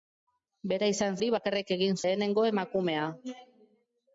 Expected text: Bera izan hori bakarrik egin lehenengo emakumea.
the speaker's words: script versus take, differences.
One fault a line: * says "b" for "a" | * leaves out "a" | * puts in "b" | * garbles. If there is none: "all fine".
all fine